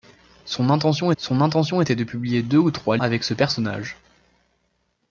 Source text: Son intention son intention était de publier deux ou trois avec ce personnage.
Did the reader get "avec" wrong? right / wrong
right